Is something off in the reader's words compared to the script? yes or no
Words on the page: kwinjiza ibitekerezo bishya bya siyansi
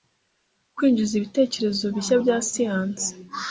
no